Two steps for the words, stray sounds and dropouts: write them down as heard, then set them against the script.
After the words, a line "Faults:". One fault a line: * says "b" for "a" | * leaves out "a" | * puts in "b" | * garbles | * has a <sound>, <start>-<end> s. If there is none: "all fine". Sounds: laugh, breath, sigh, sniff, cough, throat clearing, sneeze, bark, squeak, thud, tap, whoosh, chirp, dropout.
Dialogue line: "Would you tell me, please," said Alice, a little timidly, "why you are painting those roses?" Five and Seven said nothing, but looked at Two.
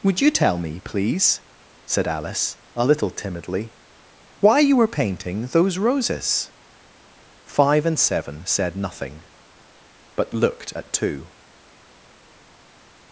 "Would you tell me, please," said Alice, a little timidly, "why you were painting those roses?" Five and Seven said nothing, but looked at Two.
Faults:
* says "were" for "are"